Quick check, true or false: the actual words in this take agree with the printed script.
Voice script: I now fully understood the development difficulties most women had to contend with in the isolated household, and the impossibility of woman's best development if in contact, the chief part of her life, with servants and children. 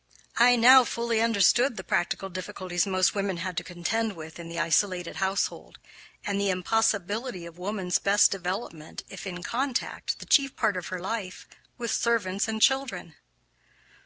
false